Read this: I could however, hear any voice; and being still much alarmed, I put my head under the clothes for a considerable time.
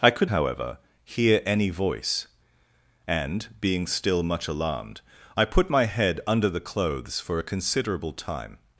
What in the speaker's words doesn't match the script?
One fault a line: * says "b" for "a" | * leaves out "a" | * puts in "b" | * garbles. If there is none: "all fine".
all fine